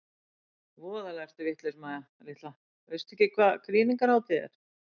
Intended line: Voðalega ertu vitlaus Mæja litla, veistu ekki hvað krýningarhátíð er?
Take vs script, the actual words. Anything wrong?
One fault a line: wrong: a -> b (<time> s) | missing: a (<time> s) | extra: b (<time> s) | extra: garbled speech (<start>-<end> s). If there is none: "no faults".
no faults